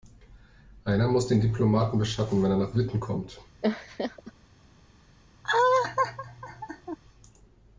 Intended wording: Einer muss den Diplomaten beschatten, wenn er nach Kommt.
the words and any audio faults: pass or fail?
fail